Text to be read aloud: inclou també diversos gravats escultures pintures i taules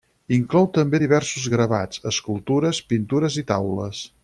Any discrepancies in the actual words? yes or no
no